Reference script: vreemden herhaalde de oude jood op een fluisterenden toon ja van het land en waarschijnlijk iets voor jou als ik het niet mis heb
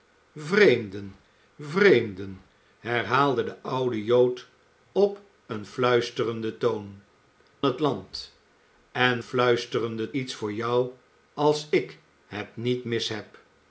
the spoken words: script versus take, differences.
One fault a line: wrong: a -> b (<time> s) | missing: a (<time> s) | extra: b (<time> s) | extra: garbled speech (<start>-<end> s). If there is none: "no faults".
extra: vreemden (1.6 s)
missing: ja van (7.0 s)
wrong: waarschijnlijk -> fluisterenden (9.2 s)